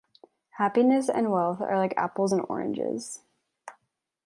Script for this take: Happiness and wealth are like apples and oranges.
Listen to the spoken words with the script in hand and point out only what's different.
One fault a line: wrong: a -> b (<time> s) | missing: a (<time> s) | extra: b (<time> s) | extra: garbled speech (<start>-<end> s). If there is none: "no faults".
no faults